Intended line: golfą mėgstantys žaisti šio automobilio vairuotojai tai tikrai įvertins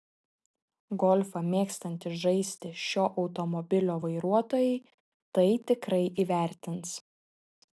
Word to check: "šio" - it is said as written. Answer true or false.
true